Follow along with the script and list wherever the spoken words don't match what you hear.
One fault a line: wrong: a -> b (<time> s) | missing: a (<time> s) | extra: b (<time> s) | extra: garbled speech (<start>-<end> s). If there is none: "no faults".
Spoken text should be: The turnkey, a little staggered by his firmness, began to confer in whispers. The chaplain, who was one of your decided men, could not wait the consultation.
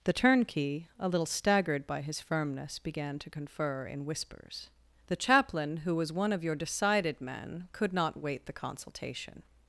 no faults